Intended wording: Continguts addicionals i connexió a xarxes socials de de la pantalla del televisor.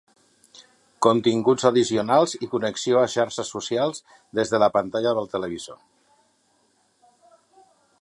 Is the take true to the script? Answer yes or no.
no